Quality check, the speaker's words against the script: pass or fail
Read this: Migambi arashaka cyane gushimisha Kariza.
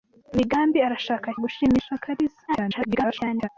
fail